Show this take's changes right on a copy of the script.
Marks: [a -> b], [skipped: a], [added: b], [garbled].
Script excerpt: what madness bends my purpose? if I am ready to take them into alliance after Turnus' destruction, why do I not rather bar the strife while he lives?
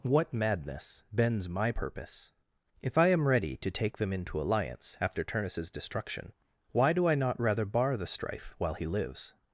what madness bends my purpose? if I am ready to take them into alliance after Turnus' destruction, why do I not rather bar the strife while he lives?